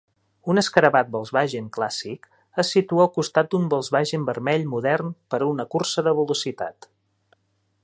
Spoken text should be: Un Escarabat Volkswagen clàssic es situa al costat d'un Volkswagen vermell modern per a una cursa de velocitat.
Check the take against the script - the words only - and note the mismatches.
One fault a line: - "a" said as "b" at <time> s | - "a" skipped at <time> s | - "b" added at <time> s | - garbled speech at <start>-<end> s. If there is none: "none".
none